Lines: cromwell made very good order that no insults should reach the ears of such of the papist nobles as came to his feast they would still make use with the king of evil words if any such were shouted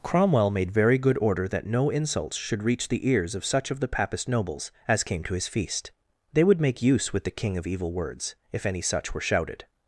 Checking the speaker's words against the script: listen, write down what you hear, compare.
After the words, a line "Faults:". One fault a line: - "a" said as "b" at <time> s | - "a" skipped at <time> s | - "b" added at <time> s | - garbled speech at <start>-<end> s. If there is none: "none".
cromwell made very good order that no insults should reach the ears of such of the papist nobles as came to his feast they would make use with the king of evil words if any such were shouted
Faults:
- "still" skipped at 6.6 s